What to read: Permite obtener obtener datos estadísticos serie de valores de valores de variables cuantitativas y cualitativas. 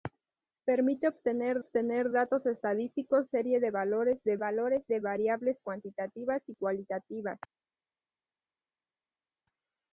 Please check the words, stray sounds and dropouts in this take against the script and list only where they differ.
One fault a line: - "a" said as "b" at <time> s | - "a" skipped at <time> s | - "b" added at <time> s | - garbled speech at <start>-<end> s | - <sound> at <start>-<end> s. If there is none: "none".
none